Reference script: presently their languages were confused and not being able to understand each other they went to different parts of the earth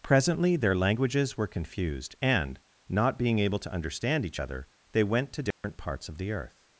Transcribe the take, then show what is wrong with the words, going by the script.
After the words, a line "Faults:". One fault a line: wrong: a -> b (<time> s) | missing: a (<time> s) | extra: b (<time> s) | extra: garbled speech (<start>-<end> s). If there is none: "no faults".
presently their languages were confused and not being able to understand each other they went to different parts of the earth
Faults:
no faults